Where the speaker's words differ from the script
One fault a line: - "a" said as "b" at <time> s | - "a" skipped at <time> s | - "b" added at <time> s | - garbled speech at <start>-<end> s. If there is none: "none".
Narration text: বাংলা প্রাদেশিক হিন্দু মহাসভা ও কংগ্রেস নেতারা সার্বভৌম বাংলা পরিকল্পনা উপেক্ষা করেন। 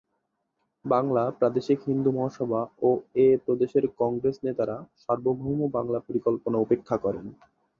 - "এ প্রদেশের" added at 3.2 s